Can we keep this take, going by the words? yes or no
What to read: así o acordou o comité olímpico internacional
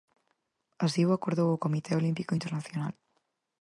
yes